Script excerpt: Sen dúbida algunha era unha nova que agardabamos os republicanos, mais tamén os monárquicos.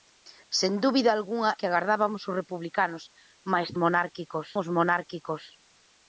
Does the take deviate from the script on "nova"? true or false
true